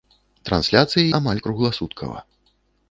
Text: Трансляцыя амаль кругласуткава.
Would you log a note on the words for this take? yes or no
no